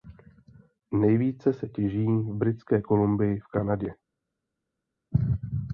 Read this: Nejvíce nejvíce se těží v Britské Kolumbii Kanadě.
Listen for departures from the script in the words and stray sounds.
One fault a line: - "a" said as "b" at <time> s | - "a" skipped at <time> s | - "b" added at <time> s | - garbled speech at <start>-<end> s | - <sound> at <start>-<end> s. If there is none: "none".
- "nejvíce" skipped at 1.5 s
- "v" added at 3.4 s